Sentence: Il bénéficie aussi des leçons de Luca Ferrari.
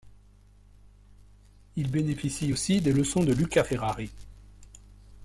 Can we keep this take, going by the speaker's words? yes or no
yes